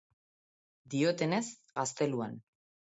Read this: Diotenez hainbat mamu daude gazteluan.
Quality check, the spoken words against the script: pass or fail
fail